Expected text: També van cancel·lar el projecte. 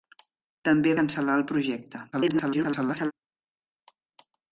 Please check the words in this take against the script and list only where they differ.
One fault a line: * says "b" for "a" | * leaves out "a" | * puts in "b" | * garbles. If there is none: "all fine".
* leaves out "van"
* garbles